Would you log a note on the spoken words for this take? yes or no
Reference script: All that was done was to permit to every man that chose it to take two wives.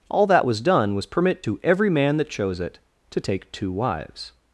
yes